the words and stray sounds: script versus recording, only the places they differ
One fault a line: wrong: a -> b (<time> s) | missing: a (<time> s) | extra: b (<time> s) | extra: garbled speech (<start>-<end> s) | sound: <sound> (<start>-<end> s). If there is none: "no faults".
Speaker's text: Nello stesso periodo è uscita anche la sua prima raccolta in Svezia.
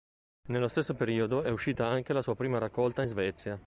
no faults